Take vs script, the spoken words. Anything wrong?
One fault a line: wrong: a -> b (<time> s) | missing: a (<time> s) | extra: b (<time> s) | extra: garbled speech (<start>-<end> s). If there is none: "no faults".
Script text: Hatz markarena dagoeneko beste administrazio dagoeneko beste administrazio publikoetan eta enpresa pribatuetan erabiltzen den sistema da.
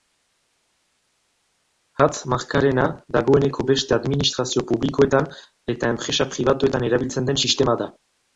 missing: dagoeneko beste administrazio (4.7 s)